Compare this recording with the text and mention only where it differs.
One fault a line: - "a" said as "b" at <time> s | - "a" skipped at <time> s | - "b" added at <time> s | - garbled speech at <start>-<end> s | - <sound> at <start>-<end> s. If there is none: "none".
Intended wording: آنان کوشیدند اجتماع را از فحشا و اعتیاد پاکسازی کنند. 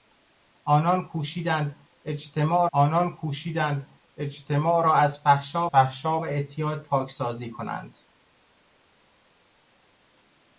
- "آنان کوشیدند اجتماع" added at 2.7 s
- "فحشا" added at 5.7 s